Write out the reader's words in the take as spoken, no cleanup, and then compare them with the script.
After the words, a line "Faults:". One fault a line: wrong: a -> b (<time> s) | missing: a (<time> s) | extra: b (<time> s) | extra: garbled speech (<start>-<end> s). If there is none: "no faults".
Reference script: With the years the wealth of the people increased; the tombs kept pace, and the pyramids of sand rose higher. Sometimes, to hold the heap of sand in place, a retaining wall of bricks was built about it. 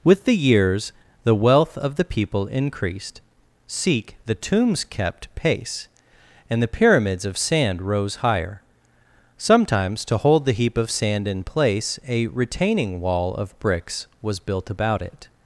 With the years the wealth of the people increased; seek the tombs kept pace, and the pyramids of sand rose higher. Sometimes, to hold the heap of sand in place, a retaining wall of bricks was built about it.
Faults:
extra: seek (3.7 s)